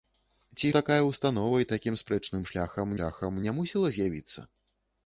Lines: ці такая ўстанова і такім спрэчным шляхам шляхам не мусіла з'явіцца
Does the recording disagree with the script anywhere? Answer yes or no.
no